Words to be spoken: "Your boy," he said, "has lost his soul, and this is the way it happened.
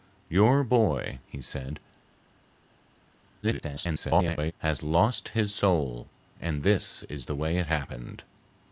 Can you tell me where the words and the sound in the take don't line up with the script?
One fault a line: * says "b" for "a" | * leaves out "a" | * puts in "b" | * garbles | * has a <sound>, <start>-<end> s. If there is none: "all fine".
* garbles